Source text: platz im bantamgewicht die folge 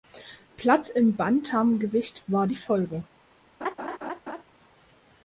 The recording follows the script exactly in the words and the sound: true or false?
false